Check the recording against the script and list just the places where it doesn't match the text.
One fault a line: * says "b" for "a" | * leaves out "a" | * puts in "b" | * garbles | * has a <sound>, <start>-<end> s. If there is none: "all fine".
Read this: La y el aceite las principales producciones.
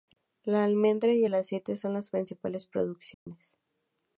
* puts in "almendra"
* puts in "son"
* has a dropout, 3.1-3.3 s